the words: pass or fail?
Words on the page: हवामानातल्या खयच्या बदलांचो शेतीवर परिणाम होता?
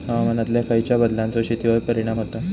pass